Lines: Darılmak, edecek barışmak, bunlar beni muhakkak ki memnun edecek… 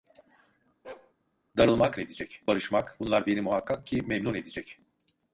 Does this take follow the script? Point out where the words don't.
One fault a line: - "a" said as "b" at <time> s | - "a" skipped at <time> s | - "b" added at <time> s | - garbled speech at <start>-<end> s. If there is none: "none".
none